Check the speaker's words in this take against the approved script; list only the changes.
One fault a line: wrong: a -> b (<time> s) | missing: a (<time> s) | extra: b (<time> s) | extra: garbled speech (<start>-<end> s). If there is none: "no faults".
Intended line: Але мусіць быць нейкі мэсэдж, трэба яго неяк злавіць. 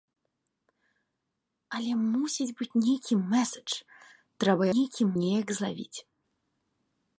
wrong: яго -> нейкі (4.7 s)